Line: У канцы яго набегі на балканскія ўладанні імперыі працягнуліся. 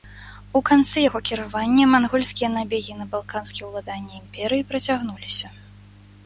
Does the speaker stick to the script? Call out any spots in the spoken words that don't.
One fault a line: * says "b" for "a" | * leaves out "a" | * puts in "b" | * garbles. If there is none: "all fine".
* puts in "кіравання мангольскія"